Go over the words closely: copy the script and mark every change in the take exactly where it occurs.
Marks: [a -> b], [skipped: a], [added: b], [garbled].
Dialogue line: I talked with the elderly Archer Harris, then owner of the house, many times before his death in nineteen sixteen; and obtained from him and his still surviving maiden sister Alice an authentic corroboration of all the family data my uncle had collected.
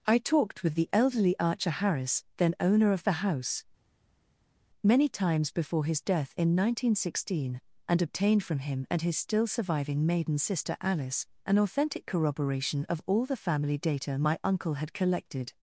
I talked with the elderly Archer Harris, then owner of the house, many times before his death in nineteen sixteen; and obtained from him and his still surviving maiden sister Alice an authentic corroboration of all the family data my uncle had collected.